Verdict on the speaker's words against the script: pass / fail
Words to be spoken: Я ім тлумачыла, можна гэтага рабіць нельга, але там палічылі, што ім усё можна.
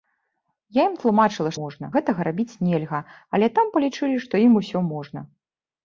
pass